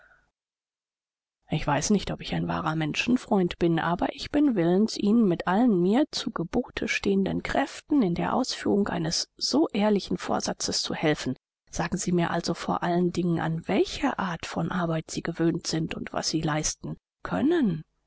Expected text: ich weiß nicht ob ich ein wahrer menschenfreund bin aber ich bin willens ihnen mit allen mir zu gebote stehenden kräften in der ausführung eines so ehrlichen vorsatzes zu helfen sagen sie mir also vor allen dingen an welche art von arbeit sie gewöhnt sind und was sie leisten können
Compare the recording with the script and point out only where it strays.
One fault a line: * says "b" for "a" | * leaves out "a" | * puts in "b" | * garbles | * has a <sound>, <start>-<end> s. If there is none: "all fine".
all fine